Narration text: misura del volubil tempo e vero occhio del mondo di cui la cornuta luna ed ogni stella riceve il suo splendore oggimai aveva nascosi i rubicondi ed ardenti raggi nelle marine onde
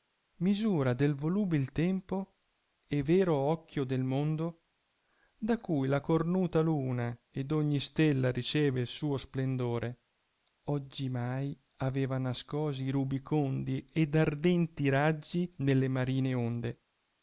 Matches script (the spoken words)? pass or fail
fail